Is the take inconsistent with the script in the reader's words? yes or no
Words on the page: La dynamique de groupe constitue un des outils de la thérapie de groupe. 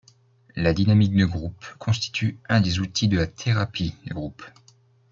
no